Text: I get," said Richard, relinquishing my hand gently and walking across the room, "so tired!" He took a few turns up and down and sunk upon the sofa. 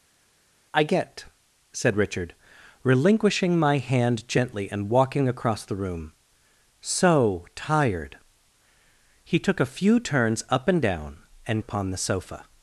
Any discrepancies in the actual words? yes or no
yes